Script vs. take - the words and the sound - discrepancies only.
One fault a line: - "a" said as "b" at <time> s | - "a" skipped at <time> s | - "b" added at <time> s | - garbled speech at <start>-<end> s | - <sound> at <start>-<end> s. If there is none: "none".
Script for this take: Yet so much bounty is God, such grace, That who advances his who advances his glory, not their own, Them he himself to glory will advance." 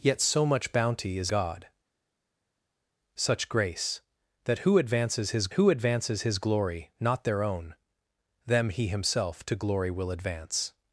none